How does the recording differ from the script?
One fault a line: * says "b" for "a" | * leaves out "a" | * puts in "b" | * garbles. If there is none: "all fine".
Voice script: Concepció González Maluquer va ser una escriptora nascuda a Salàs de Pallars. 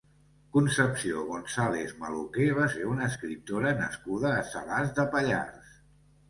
all fine